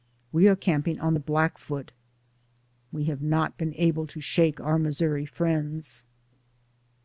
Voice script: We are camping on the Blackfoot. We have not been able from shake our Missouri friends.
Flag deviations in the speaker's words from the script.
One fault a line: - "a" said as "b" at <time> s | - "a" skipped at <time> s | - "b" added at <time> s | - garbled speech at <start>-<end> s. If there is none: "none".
- "from" said as "to" at 4.1 s